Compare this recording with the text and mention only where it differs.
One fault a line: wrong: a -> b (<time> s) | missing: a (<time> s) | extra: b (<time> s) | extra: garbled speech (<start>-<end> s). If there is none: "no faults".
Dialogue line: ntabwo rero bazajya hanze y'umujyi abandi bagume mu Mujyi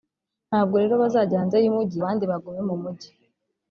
no faults